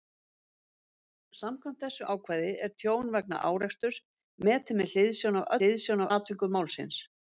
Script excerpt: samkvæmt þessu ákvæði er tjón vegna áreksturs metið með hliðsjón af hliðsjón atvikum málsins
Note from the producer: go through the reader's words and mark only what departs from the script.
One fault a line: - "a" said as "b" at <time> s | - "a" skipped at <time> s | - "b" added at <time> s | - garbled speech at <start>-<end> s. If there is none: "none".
none